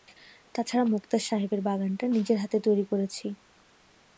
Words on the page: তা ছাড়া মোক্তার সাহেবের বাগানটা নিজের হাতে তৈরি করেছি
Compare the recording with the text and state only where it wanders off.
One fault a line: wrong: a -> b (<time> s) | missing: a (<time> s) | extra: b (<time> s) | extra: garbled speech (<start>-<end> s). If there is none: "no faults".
no faults